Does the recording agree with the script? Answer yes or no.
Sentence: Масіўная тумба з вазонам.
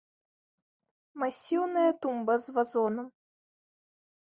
yes